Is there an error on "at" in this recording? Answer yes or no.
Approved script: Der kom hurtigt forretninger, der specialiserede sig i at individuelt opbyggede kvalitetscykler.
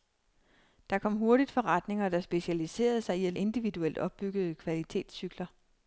no